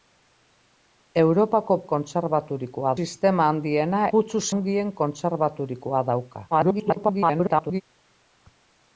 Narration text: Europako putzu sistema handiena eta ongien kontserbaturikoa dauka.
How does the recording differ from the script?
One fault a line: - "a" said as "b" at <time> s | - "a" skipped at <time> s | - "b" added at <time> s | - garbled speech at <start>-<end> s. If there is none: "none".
- "putzu" said as "kontserbaturikoa" at 1.9 s
- "eta" said as "putzu" at 4.1 s
- garbled speech at 6.5-7.8 s